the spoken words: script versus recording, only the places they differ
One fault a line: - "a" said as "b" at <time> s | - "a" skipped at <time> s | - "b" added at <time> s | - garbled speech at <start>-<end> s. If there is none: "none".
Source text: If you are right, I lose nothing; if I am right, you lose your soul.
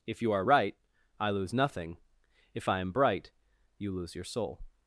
- "right" said as "bright" at 2.9 s